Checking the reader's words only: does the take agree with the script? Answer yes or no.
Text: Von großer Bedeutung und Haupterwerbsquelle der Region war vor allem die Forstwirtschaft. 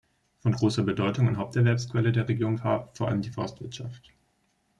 yes